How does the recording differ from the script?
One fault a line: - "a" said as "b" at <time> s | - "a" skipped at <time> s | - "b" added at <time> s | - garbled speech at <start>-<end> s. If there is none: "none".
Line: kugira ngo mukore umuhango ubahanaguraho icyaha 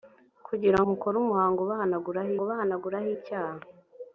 - "ngo" skipped at 0.8 s
- "ubahanaguraho" added at 2.4 s